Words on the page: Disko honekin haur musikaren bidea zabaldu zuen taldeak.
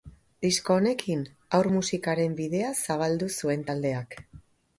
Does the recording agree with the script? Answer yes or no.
yes